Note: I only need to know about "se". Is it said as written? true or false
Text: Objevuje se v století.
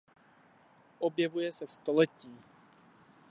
true